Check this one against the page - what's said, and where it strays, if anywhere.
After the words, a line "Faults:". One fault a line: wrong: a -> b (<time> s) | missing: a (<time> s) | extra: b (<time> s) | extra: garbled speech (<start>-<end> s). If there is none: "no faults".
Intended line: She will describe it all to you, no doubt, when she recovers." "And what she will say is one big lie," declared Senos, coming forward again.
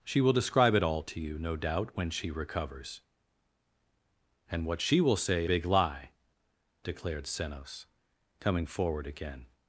She will describe it all to you, no doubt, when she recovers." "And what she will say big lie," declared Senos, coming forward again.
Faults:
missing: is one (5.5 s)